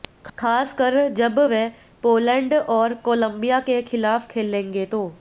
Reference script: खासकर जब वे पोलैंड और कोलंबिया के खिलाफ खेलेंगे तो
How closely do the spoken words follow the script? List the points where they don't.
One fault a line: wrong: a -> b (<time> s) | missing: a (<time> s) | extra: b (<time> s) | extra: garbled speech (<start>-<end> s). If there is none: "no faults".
no faults